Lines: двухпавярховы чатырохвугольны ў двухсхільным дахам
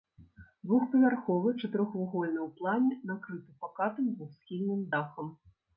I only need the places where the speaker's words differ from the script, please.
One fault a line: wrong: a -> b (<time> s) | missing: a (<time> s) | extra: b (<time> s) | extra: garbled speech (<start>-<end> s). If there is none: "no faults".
extra: плане накрыты пакатым (2.6 s)